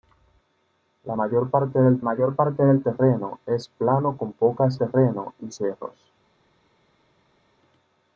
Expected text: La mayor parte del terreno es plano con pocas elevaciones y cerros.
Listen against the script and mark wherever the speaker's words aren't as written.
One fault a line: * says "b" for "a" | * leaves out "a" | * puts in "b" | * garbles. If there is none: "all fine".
* puts in "mayor parte del"
* says "terreno" for "elevaciones"